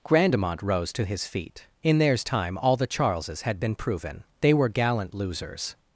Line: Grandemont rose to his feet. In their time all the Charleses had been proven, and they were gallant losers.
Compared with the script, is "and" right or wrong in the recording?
wrong